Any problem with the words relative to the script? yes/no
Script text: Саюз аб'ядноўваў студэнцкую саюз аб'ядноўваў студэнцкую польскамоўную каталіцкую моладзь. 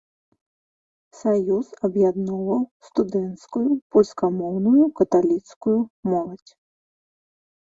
yes